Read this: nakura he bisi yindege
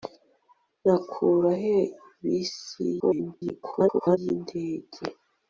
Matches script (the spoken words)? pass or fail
fail